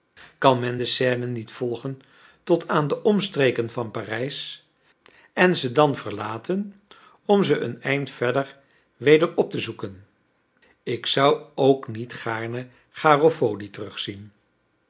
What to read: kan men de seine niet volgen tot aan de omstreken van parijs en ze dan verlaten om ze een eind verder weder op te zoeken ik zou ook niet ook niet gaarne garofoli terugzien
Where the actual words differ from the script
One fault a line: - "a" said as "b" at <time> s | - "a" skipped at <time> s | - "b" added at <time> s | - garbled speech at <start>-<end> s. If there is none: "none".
- "ook niet" skipped at 12.1 s